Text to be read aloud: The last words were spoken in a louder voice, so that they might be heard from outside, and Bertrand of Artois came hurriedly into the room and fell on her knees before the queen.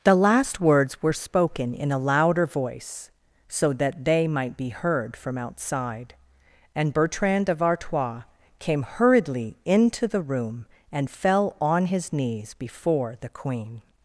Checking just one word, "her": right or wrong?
wrong